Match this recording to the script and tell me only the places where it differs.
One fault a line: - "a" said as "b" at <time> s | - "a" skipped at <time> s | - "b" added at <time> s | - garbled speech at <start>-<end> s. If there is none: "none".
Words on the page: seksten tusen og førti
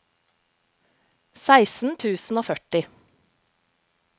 none